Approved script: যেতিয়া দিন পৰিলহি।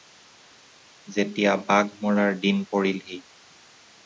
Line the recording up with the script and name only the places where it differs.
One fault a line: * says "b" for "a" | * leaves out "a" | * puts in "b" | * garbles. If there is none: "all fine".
* puts in "বাঘ মৰাৰ"